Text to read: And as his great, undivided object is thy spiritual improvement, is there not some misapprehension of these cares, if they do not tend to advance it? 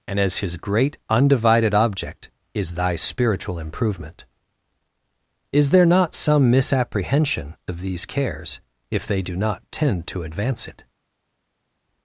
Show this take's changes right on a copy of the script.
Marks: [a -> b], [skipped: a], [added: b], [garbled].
And as his great, undivided object is thy spiritual improvement, is there not some misapprehension of these cares, if they do not tend to advance it?